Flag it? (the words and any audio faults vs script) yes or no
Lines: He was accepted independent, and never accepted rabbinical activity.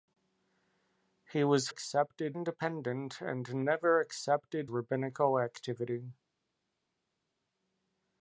no